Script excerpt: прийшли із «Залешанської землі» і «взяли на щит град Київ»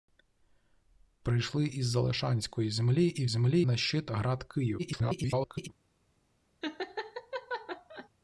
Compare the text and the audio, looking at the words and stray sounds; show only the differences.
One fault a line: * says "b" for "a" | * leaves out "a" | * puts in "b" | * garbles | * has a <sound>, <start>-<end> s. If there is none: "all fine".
* says "землі" for "взяли"
* garbles
* has a laugh, 6.6-8.1 s